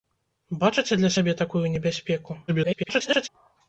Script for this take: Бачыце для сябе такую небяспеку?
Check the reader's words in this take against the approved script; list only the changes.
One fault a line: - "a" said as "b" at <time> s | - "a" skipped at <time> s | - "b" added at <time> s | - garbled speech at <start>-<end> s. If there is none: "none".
- garbled speech at 2.5-3.3 s